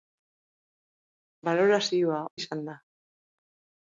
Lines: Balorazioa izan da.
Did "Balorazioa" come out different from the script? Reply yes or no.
no